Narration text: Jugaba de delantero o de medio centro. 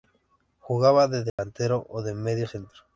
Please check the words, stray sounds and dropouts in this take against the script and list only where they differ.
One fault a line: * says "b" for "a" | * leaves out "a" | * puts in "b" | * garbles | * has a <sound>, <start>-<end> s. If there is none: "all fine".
* has a dropout, 1.3-1.4 s